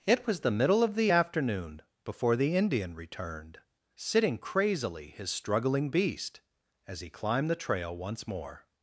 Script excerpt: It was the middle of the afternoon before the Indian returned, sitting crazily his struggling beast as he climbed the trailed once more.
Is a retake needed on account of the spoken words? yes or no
yes